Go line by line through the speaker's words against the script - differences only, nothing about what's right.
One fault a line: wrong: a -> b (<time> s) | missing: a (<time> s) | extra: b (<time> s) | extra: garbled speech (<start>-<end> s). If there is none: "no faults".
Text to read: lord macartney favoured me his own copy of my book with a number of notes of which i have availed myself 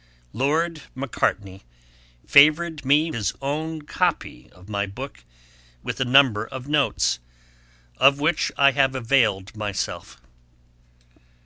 no faults